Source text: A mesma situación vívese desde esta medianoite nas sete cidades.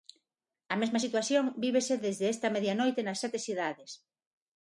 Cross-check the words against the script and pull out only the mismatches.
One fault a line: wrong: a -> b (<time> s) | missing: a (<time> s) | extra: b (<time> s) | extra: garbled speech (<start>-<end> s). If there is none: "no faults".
no faults